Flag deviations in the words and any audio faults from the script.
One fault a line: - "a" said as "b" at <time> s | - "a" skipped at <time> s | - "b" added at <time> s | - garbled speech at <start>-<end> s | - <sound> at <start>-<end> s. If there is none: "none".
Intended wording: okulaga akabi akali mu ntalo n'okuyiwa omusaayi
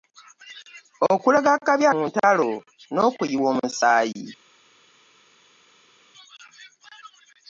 - "akali" skipped at 1.9 s